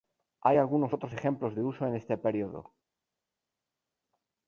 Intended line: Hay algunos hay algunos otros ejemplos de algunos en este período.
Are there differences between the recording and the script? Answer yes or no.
yes